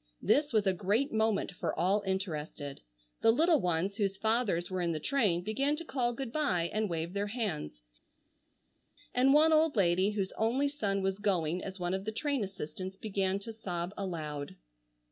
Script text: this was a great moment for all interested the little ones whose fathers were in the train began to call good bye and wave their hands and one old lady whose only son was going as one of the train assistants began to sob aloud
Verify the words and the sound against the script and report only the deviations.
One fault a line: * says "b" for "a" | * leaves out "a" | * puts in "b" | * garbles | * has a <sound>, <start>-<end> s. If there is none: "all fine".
all fine